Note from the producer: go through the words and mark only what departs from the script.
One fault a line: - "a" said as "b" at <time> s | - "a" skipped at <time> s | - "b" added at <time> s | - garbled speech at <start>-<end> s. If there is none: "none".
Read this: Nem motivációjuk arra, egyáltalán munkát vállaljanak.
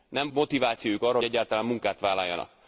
none